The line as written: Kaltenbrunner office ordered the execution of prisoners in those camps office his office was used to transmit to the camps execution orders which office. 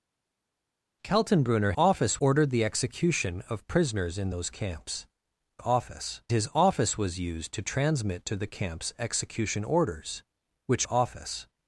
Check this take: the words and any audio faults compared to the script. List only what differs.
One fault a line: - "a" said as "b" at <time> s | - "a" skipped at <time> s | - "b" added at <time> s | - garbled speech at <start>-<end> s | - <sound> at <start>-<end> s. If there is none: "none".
none